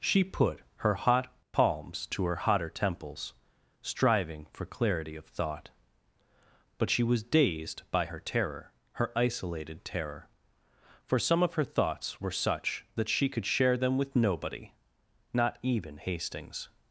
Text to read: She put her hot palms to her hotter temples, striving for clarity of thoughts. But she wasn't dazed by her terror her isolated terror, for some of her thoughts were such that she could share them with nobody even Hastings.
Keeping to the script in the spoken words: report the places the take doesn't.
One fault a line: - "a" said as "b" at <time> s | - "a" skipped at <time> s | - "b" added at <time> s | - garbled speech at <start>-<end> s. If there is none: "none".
- "thoughts" said as "thought" at 5.2 s
- "wasn't" said as "was" at 7.0 s
- "not" added at 15.3 s